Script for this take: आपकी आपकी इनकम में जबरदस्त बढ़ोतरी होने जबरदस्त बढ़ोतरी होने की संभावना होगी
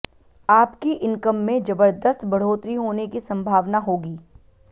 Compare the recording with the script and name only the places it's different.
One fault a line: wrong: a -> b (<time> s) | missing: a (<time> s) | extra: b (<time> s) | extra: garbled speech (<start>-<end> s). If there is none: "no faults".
missing: आपकी (0.9 s)
missing: जबरदस्त बढ़ोतरी होने (3.1 s)